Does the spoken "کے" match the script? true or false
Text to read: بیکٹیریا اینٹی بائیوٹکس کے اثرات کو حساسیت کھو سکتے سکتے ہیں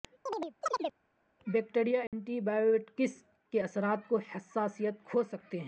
true